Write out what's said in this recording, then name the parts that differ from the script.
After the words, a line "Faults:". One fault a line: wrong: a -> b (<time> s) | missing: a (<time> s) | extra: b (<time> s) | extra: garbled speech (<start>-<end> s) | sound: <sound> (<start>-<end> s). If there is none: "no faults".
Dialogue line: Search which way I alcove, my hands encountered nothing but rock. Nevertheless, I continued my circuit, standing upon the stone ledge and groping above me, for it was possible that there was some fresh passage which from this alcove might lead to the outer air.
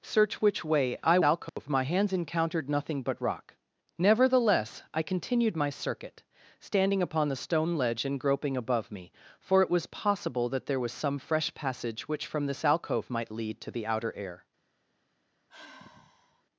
Search which way I alcove, my hands encountered nothing but rock. Nevertheless, I continued my circuit, standing upon the stone ledge and groping above me, for it was possible that there was some fresh passage which from this alcove might lead to the outer air.
Faults:
sound: dropout (1.5-1.6 s)
sound: sigh (15.5-16.4 s)